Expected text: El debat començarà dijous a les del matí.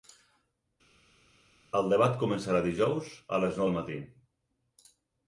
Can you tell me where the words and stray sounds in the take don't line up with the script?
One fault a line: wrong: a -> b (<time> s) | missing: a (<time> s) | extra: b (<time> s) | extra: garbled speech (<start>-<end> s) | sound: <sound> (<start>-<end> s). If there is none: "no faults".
no faults